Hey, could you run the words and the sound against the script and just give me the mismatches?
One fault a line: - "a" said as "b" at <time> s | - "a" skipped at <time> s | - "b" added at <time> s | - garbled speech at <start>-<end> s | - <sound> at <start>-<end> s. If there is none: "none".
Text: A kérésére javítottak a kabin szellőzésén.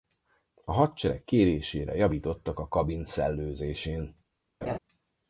- "hadsereg" added at 0.7 s
- laugh at 4.6-4.8 s